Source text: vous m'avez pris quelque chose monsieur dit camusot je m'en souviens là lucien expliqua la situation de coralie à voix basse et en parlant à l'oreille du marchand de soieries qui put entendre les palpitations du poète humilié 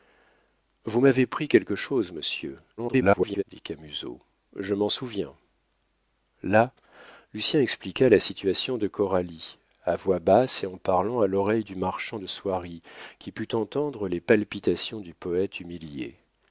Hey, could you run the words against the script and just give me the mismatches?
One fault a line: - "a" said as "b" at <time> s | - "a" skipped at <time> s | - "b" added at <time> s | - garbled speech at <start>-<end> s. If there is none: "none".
- garbled speech at 2.8-3.4 s